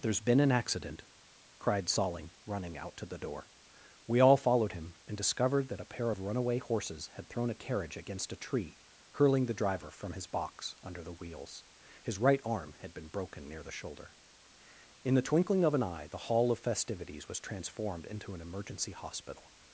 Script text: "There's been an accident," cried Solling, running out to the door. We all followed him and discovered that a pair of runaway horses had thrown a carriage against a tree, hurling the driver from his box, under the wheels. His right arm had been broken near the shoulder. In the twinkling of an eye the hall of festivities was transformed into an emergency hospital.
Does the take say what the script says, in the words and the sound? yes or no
yes